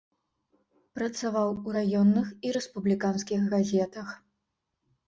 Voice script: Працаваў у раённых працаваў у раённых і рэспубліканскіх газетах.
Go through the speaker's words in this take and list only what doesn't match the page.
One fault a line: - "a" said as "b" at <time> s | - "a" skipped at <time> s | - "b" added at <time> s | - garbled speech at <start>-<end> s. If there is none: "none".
- "працаваў у раённых" skipped at 2.3 s